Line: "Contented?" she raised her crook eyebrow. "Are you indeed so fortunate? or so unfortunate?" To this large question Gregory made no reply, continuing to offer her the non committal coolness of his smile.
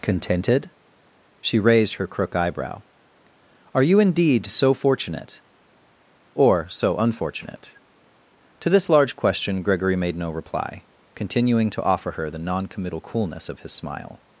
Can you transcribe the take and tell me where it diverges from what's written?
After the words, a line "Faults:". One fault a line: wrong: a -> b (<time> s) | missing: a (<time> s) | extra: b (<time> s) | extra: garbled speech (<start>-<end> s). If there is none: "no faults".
"Contented?" she raised her crook eyebrow. "Are you indeed so fortunate? or so unfortunate?" To this large question Gregory made no reply, continuing to offer her the non committal coolness of his smile.
Faults:
no faults